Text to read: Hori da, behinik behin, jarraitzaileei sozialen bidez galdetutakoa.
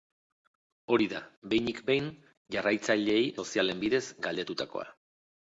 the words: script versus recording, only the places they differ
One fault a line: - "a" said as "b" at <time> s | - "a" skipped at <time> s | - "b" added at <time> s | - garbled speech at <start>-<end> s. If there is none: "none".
none